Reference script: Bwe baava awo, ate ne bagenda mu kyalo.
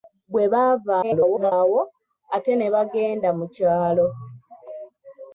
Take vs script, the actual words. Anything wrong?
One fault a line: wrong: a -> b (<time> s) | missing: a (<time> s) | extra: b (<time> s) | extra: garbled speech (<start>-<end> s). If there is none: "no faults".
extra: garbled speech (1.0-1.5 s)